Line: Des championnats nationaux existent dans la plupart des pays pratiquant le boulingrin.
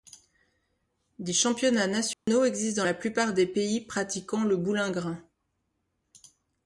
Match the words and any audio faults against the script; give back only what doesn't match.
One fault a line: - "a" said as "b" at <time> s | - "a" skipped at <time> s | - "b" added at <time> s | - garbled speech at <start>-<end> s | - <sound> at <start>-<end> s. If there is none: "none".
- dropout at 2.1-2.3 s